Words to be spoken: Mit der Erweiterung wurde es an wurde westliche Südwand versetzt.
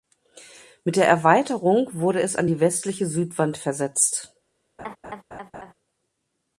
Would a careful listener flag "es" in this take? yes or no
no